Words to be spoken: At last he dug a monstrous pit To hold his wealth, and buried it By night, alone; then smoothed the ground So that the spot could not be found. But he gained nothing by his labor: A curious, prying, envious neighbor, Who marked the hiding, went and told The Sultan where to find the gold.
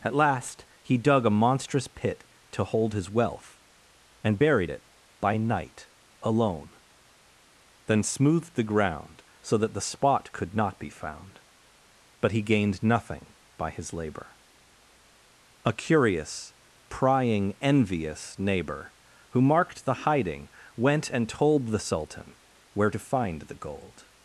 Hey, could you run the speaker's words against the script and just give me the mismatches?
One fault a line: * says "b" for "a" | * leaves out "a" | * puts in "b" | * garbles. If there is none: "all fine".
all fine